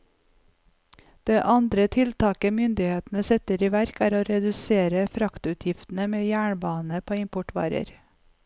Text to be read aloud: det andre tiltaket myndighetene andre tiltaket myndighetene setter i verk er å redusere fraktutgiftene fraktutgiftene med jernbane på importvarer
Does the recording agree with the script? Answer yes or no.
no